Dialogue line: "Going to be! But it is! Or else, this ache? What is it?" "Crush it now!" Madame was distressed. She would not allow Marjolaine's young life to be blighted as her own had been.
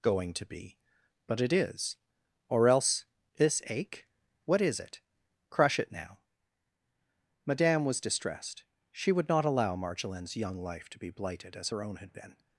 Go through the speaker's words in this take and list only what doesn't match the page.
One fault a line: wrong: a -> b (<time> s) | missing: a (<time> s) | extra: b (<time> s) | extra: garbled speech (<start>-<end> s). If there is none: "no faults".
no faults